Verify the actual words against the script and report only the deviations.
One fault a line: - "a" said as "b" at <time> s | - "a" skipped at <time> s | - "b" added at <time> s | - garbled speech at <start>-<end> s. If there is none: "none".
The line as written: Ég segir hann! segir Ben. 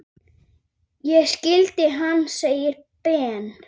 - "segir" said as "skildi" at 1.3 s